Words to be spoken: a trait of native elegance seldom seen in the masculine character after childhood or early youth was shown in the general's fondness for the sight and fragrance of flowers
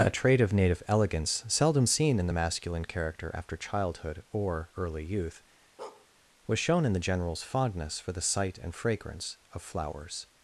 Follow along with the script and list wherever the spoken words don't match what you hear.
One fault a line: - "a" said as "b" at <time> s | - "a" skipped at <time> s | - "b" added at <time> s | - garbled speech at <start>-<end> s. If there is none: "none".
none